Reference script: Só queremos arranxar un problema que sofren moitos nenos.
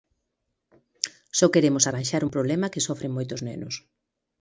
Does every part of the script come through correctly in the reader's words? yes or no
yes